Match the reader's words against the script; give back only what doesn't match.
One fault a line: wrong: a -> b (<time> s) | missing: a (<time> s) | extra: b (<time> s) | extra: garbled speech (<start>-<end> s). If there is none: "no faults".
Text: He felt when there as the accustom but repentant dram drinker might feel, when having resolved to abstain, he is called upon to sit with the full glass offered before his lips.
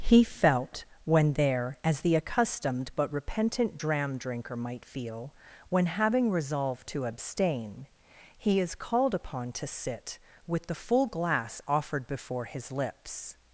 wrong: accustom -> accustomed (2.2 s)